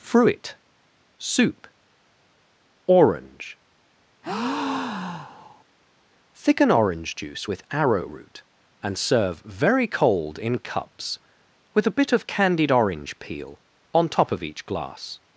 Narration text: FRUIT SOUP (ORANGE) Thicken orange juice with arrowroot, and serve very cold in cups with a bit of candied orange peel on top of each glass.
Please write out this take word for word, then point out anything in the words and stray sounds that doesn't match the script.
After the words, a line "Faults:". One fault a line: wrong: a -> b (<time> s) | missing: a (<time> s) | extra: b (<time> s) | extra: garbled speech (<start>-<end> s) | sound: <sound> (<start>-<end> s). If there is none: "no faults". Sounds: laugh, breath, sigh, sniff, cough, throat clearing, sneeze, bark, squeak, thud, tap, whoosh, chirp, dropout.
FRUIT SOUP (ORANGE) Thicken orange juice with arrowroot, and serve very cold in cups with a bit of candied orange peel on top of each glass.
Faults:
sound: breath (4.2-5.6 s)